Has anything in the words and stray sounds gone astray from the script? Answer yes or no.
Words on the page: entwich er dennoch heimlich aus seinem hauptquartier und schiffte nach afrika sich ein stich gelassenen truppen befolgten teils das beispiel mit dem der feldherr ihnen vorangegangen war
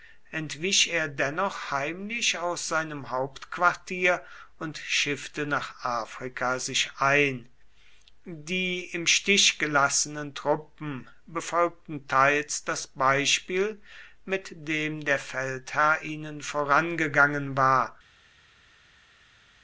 yes